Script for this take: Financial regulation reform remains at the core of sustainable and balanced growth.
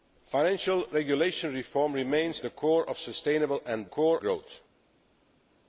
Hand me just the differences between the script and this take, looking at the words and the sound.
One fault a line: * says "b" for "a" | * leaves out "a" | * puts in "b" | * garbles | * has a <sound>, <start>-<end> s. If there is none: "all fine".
* leaves out "at"
* says "core" for "balanced"